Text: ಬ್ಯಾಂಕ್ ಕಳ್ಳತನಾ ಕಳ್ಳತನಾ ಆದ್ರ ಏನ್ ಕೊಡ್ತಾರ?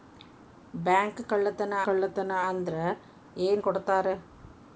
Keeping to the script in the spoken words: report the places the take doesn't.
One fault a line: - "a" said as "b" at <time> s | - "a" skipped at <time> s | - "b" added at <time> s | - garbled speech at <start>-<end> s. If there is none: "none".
none